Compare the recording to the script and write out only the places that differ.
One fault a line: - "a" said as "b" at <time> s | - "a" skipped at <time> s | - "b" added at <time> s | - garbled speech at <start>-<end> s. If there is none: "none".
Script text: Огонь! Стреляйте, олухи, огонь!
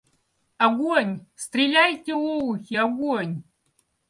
none